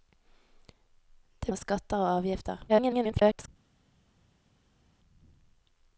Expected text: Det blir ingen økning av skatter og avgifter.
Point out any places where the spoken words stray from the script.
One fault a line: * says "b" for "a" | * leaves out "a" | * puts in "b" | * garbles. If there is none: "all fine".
* leaves out "blir ingen økning"
* garbles